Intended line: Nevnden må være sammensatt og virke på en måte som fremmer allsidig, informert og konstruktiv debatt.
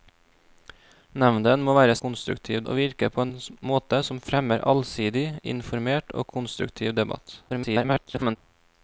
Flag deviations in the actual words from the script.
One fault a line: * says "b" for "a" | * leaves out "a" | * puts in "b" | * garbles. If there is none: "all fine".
* says "konstruktiv" for "sammensatt"
* garbles